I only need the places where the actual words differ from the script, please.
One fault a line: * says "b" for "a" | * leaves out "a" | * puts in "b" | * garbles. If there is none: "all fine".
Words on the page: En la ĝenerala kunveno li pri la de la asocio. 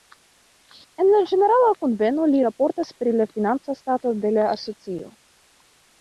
* puts in "raportas"
* puts in "financa stato"